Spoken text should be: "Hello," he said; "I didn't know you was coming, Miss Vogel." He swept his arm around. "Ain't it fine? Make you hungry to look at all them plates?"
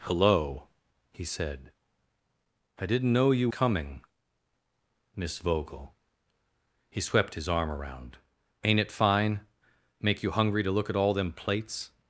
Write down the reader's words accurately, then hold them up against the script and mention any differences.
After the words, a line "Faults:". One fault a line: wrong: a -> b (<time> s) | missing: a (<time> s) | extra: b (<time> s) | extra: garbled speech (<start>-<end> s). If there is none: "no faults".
"Hello," he said; "I didn't know you coming, Miss Vogel." He swept his arm around. "Ain't it fine? Make you hungry to look at all them plates?"
Faults:
missing: was (3.5 s)